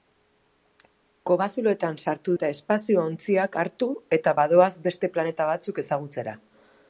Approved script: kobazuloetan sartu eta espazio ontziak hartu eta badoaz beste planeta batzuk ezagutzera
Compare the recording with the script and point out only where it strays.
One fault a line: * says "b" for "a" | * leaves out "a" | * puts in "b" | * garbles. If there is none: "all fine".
all fine